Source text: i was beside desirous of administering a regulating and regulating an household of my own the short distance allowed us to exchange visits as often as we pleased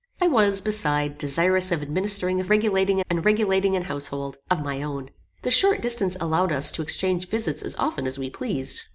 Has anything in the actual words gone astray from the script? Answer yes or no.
no